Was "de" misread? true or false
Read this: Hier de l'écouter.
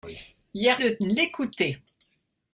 false